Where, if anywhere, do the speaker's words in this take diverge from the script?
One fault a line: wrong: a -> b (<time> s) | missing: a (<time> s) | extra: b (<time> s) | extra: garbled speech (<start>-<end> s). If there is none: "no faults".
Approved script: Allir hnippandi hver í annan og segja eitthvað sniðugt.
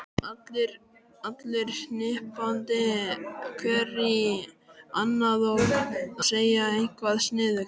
no faults